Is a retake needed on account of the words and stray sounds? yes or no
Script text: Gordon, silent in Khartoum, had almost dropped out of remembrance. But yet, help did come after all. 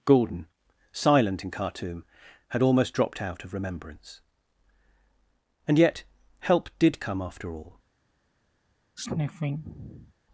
yes